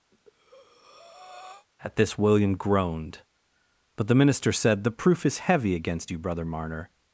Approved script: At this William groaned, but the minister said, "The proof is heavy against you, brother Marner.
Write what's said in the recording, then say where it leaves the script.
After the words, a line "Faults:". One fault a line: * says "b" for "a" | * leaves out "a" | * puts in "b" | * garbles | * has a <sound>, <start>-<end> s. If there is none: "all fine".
At this William groaned, but the minister said, "The proof is heavy against you, brother Marner.
Faults:
* has a breath, 0.1-1.7 s